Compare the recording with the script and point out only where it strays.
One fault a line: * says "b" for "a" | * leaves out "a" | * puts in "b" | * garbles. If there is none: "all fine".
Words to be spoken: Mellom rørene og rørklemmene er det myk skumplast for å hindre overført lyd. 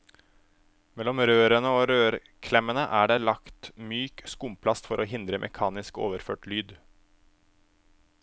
* puts in "lagt"
* puts in "mekanisk"